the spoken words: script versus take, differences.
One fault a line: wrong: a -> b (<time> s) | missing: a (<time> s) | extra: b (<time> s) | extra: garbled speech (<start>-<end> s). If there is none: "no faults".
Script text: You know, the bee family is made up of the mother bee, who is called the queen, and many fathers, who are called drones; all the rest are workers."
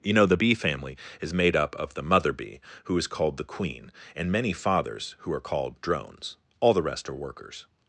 no faults